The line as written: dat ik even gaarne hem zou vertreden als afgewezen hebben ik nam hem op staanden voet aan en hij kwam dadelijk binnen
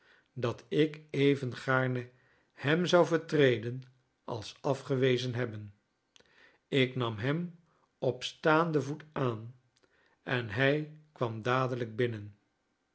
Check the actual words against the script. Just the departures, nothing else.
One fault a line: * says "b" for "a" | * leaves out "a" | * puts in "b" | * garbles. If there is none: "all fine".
all fine